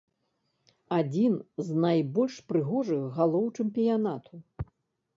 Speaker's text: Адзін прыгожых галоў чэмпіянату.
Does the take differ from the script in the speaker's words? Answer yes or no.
yes